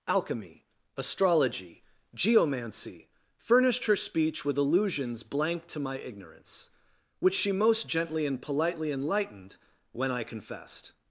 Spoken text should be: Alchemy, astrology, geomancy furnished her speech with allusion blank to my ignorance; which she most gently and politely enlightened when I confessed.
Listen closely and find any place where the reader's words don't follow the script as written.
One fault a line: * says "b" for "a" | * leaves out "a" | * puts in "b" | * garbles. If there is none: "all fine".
* says "allusions" for "allusion"